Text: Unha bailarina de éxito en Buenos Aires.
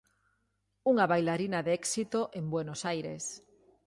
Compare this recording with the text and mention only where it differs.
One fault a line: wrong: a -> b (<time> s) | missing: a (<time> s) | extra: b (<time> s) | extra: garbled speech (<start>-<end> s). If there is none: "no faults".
no faults